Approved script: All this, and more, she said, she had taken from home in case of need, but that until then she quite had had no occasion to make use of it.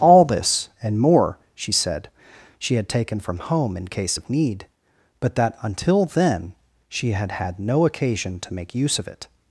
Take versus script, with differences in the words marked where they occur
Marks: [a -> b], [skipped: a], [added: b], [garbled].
All this, and more, she said, she had taken from home in case of need, but that until then she [skipped: quite] had had no occasion to make use of it.